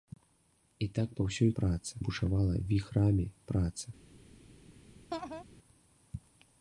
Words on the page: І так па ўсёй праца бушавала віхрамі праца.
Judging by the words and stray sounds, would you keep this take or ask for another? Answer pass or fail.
fail